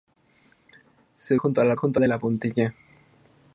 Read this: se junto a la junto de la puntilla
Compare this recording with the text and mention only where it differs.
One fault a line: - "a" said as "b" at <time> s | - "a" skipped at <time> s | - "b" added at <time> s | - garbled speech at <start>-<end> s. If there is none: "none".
none